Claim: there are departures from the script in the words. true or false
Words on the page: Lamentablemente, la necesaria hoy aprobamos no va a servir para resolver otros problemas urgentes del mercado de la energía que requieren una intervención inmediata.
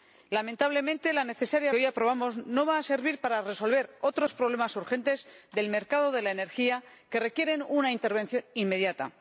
false